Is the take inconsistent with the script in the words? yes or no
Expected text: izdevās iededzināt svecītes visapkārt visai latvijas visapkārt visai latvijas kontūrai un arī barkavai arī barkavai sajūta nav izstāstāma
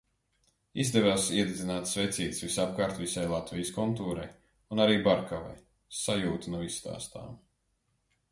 yes